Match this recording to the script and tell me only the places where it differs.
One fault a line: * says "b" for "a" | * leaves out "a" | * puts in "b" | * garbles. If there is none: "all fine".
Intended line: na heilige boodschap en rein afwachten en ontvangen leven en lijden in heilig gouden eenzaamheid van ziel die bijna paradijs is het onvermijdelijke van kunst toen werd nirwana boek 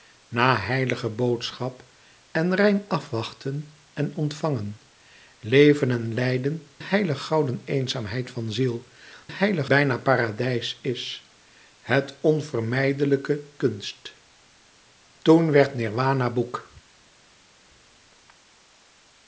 * leaves out "in"
* says "heilig" for "die"
* leaves out "van"